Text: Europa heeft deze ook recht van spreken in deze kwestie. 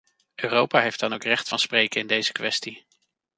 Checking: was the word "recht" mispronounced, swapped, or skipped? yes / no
no